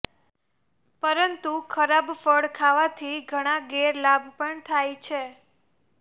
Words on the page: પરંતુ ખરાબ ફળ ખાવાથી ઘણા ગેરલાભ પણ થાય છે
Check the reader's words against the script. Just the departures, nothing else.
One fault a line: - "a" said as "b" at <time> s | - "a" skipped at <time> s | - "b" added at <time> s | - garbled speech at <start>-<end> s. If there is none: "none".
none